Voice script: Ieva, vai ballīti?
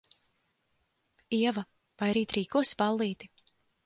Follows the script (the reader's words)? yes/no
no